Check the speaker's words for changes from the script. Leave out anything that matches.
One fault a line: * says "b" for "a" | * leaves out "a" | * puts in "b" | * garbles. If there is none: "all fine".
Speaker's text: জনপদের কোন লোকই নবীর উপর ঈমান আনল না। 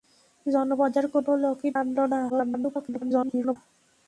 * leaves out "নবীর উপর ঈমান"
* garbles